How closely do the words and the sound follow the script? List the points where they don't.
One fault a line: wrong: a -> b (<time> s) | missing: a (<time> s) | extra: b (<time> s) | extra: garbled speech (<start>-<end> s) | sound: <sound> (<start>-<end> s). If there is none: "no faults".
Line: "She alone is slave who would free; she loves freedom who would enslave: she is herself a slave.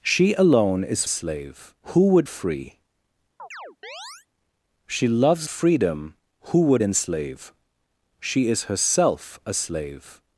sound: chirp (3.4-4.3 s)